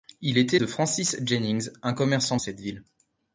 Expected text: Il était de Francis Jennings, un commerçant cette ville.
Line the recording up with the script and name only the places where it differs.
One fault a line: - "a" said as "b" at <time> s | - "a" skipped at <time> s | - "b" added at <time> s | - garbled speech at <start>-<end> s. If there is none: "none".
none